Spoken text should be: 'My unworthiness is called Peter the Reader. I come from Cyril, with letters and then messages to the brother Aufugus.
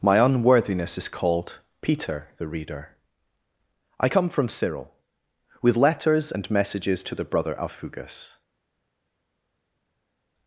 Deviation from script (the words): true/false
true